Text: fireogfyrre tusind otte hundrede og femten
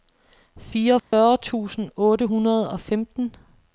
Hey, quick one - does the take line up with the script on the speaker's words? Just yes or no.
yes